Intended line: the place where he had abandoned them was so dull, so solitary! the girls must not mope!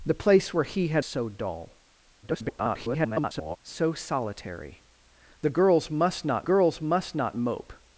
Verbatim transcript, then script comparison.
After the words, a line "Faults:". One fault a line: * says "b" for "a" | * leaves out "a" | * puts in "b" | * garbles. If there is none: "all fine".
the place where he had so dull, [garbled] so solitary! the girls must not girls must not mope!
Faults:
* leaves out "abandoned them was"
* garbles
* puts in "girls must not"